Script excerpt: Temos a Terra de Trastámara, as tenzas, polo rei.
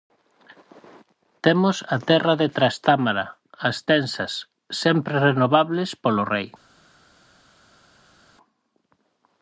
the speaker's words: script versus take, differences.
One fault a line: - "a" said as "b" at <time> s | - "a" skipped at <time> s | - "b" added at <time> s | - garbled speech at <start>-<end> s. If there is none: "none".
- "sempre renovables" added at 4.8 s